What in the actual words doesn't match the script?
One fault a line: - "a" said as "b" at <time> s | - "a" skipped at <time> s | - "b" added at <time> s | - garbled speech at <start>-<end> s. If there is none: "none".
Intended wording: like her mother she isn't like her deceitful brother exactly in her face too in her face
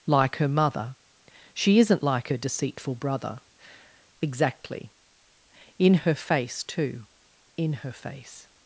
none